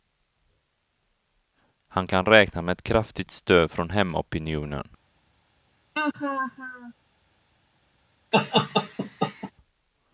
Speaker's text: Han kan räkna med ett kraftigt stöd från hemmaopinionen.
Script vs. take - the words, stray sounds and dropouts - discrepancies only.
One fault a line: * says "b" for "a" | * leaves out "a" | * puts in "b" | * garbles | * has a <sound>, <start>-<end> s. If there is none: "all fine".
* has a laugh, 6.0-6.9 s
* has a laugh, 8.3-9.5 s